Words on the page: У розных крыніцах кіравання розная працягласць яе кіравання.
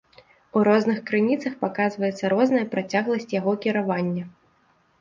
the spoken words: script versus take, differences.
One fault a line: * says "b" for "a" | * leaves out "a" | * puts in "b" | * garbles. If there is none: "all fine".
* says "паказваецца" for "кіравання"
* says "яго" for "яе"